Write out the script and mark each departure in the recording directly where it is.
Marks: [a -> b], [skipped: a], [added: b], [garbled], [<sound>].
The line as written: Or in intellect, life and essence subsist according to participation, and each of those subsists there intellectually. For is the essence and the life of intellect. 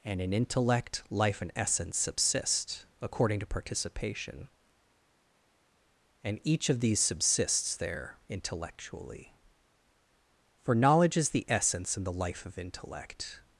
[Or -> And] in intellect, life and essence subsist according to participation, and each of [those -> these] subsists there intellectually. For [added: knowledge] is the essence and the life of intellect.